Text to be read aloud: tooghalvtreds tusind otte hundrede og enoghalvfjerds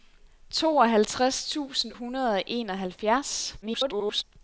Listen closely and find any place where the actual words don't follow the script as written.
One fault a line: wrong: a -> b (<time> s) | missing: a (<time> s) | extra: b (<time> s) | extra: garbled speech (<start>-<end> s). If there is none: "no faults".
missing: otte (1.9 s)
extra: garbled speech (3.6-4.2 s)